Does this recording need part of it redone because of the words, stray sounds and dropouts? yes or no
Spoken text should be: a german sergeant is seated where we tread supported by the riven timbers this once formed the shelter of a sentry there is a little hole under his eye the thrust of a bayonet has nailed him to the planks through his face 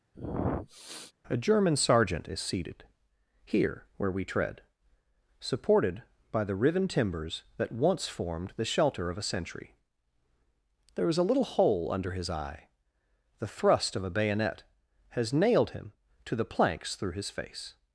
yes